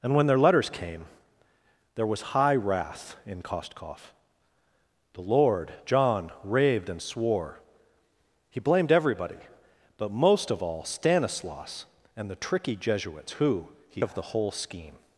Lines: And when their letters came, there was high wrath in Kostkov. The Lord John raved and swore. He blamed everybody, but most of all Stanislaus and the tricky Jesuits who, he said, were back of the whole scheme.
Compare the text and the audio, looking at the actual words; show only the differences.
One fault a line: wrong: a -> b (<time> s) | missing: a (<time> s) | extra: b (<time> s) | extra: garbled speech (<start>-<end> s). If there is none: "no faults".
missing: said were back (14.0 s)